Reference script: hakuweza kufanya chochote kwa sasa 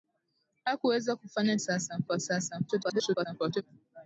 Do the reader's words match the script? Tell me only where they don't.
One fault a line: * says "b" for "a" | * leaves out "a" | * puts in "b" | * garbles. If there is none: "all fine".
* says "sasa" for "chochote"
* garbles